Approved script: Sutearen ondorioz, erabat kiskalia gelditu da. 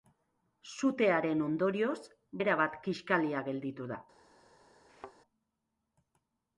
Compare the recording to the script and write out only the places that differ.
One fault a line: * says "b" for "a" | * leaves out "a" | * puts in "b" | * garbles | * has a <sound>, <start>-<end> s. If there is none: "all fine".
* has a thud, 4.9-5.2 s